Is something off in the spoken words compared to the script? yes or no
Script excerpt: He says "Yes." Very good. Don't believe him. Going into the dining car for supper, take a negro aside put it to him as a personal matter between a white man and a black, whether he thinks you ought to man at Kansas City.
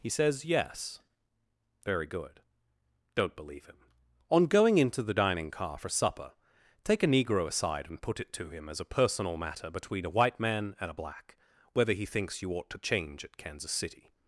yes